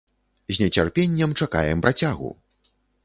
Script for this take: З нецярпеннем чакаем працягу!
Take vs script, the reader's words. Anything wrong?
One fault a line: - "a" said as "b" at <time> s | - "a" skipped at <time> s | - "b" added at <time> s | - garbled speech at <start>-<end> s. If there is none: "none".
none